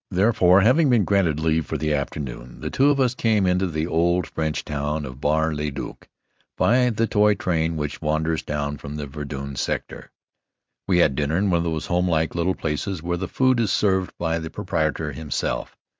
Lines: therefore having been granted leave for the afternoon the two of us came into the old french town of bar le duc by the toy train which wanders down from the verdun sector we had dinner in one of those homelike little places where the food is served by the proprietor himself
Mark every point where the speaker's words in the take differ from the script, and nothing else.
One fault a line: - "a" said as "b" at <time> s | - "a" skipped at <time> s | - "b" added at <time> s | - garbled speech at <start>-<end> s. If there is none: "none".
none